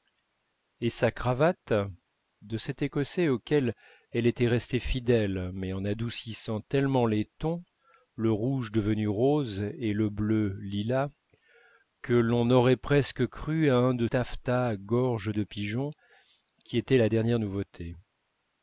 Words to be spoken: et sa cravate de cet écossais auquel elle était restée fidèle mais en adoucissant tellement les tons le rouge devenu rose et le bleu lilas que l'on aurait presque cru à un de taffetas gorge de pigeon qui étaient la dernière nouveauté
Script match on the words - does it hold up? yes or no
yes